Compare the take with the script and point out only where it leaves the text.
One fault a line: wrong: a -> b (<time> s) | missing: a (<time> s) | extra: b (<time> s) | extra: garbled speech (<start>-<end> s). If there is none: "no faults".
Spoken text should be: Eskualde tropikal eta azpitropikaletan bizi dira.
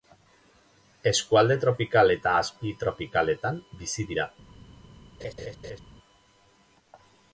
no faults